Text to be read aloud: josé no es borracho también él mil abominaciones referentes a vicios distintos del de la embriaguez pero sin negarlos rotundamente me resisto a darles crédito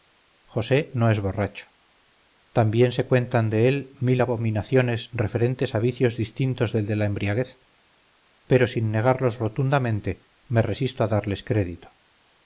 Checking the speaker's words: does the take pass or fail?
fail